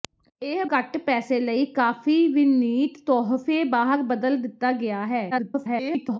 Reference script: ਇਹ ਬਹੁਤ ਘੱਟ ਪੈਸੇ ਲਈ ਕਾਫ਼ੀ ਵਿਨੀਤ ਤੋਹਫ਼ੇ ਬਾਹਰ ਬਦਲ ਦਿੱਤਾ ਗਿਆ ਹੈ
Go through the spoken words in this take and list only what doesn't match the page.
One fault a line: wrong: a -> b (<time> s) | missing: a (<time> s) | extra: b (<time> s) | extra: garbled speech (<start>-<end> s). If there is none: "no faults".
missing: ਬਹੁਤ (0.6 s)
extra: garbled speech (5.3-6.2 s)